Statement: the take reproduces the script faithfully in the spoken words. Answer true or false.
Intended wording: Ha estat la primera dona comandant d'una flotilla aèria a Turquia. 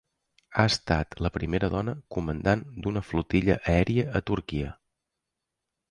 true